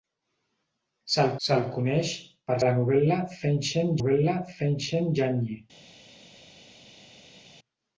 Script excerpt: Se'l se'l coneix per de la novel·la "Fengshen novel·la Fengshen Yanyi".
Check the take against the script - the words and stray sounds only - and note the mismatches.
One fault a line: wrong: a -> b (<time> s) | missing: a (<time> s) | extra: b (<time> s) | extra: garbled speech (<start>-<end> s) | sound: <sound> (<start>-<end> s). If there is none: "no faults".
no faults